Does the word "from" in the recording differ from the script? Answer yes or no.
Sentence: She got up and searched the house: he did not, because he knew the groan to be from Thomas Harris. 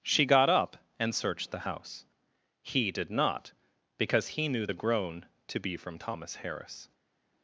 no